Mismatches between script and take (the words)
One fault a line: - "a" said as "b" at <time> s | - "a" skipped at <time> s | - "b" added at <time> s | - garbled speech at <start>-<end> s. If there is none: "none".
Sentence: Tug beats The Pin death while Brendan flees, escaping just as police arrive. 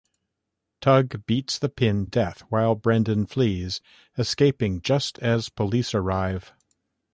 none